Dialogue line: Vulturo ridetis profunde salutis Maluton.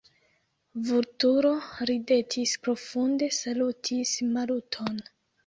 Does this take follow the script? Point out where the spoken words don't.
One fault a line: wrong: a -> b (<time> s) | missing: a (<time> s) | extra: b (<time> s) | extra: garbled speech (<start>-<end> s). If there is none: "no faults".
no faults